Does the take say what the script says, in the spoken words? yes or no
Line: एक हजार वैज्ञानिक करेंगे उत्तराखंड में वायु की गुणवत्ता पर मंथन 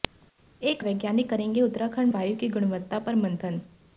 no